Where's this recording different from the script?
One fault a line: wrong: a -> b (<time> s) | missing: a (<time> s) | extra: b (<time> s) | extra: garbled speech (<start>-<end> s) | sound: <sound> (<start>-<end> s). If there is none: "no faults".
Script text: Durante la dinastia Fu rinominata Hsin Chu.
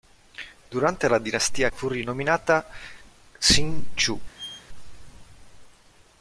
sound: squeak (4.3-4.7 s)